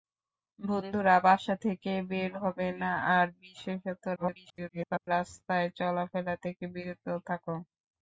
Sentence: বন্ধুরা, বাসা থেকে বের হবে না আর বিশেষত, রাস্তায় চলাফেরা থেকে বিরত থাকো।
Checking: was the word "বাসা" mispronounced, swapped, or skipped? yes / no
no